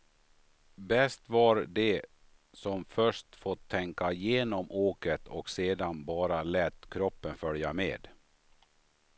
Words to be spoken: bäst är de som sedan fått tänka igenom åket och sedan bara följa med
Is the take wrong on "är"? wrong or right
wrong